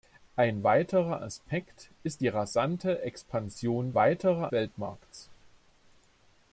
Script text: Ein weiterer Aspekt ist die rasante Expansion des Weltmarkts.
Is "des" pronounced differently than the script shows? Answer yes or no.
yes